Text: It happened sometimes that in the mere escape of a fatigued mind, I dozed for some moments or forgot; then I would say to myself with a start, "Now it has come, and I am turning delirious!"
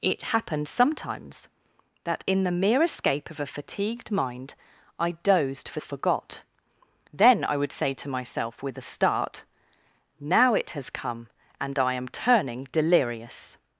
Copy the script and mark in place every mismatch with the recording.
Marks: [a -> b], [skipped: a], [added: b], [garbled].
It happened sometimes that in the mere escape of a fatigued mind, I dozed for [skipped: some moments or] forgot; then I would say to myself with a start, "Now it has come, and I am turning delirious!"